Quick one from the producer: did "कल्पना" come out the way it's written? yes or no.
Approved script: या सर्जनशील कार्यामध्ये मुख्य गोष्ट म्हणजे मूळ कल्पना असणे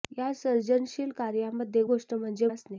no